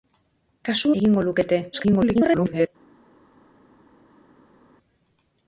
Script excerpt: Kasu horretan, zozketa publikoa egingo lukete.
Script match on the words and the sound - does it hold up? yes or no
no